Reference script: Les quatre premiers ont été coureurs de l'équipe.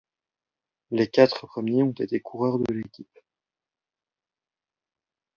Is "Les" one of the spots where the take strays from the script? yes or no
no